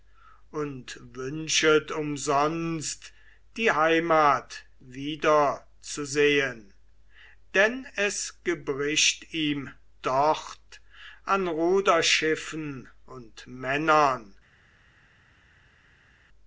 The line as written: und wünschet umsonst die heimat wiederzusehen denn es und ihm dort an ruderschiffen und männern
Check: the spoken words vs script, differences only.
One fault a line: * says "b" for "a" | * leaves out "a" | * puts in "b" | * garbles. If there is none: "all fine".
* says "gebricht" for "und"